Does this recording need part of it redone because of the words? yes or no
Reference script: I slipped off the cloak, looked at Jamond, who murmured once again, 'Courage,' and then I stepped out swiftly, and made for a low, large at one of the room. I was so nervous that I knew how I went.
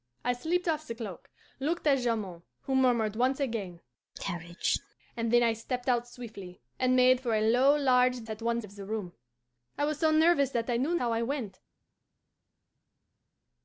no